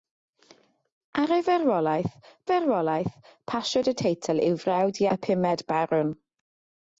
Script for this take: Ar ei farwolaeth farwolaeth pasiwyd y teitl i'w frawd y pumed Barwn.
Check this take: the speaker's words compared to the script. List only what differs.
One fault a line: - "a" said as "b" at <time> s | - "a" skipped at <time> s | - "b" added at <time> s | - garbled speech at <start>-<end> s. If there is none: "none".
none